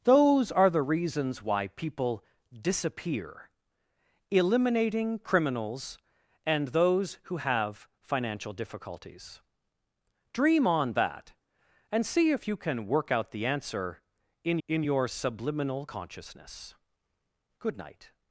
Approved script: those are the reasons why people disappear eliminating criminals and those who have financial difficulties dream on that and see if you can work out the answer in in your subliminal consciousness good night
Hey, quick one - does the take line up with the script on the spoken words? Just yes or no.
yes